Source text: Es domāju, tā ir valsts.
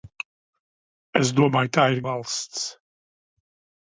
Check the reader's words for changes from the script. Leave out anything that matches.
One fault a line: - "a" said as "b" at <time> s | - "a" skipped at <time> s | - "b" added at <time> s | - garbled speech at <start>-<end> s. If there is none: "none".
none